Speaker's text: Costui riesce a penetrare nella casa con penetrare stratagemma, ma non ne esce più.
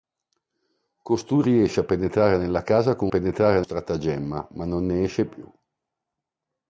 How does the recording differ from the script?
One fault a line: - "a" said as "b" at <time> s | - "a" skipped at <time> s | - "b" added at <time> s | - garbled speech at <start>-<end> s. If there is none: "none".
none